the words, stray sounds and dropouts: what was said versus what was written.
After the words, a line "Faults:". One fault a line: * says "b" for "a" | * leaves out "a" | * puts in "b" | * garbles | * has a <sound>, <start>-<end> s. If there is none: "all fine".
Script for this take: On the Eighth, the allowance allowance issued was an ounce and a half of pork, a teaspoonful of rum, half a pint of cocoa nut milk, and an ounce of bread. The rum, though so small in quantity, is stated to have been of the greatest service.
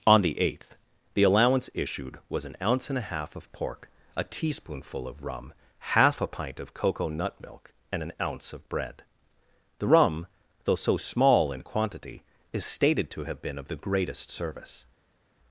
On the Eighth, the allowance issued was an ounce and a half of pork, a teaspoonful of rum, half a pint of cocoa nut milk, and an ounce of bread. The rum, though so small in quantity, is stated to have been of the greatest service.
Faults:
* leaves out "allowance"